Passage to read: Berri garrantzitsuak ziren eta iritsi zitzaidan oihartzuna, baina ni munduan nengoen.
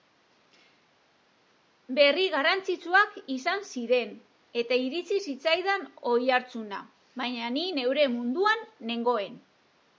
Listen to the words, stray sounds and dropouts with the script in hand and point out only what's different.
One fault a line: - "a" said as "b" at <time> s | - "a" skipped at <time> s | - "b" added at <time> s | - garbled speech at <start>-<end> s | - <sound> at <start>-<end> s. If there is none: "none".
- "izan" added at 3.3 s
- "neure" added at 7.8 s